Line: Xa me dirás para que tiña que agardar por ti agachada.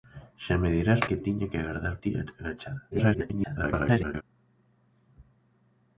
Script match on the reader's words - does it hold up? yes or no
no